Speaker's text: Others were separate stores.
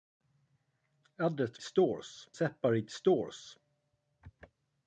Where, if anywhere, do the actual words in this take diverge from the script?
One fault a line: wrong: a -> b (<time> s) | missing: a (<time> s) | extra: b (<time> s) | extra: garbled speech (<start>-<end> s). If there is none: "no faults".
wrong: were -> stores (1.6 s)